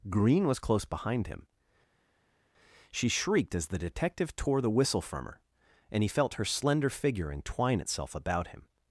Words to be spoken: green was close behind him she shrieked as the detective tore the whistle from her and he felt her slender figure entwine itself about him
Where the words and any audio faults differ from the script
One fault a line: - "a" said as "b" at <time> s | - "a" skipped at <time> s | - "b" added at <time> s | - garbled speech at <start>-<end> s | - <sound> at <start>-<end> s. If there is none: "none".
none